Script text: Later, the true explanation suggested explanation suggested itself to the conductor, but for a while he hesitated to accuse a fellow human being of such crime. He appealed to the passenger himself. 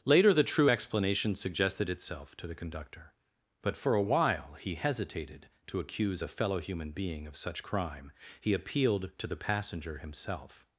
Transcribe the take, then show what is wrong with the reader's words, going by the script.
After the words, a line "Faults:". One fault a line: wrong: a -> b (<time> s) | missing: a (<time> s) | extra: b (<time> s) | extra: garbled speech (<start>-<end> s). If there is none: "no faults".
Later, the true explanation suggested itself to the conductor, but for a while he hesitated to accuse a fellow human being of such crime. He appealed to the passenger himself.
Faults:
missing: explanation suggested (1.9 s)